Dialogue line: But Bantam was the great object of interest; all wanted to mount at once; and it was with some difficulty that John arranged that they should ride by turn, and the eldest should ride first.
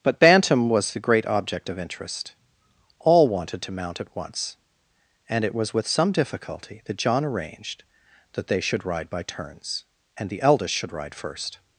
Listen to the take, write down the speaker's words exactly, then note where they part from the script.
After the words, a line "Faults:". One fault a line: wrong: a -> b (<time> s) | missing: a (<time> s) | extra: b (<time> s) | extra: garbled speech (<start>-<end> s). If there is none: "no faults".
But Bantam was the great object of interest; all wanted to mount at once; and it was with some difficulty that John arranged that they should ride by turns, and the eldest should ride first.
Faults:
wrong: turn -> turns (9.2 s)